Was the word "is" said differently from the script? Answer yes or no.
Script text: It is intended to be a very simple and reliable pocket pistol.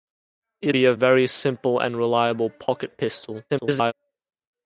yes